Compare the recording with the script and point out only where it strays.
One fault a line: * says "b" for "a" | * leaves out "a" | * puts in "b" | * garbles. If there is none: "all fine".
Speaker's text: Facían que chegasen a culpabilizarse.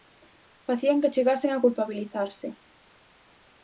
all fine